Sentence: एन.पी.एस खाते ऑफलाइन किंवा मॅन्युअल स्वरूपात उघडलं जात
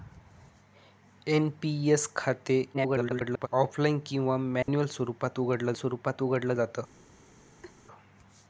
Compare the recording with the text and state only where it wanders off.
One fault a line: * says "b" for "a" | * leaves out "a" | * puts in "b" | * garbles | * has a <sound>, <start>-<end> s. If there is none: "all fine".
* garbles
* has a dropout, 4.6-4.7 s
* puts in "स्वरूपात उघडलं"
* has a laugh, 7.6-7.7 s